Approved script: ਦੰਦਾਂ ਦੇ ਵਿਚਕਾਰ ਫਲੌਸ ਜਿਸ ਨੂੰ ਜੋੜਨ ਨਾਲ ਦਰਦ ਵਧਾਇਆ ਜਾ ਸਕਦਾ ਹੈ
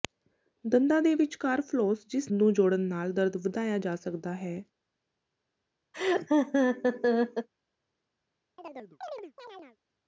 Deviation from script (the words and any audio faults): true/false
true